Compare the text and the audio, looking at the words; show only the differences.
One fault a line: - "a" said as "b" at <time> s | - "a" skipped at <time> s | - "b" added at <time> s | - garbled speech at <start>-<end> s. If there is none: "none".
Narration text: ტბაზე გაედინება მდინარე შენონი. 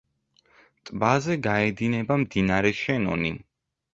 none